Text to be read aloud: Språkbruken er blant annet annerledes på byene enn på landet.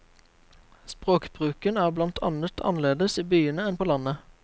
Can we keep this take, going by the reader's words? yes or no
no